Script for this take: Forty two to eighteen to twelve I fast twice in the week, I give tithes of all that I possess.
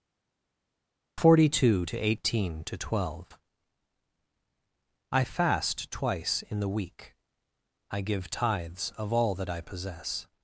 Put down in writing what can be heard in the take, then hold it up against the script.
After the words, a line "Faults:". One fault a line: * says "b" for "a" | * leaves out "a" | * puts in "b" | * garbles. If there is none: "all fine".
Forty two to eighteen to twelve I fast twice in the week, I give tithes of all that I possess.
Faults:
all fine